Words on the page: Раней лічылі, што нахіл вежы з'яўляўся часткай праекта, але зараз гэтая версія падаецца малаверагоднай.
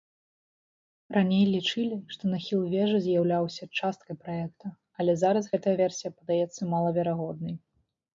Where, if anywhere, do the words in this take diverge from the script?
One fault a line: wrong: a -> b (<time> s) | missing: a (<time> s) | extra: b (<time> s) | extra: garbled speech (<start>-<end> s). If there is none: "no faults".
no faults